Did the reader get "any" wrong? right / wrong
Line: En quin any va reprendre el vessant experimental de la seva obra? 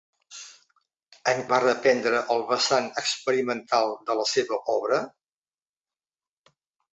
wrong